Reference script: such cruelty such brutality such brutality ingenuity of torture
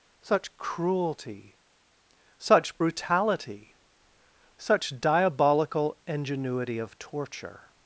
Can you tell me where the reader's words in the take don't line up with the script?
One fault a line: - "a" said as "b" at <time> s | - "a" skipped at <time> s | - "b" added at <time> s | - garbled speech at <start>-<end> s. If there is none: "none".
- "brutality" said as "diabolical" at 5.0 s